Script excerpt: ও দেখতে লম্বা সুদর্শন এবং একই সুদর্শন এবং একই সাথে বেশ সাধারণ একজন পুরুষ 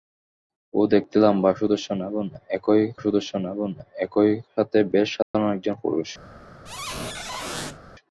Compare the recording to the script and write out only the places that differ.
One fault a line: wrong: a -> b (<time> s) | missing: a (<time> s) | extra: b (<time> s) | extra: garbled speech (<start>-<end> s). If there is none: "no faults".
no faults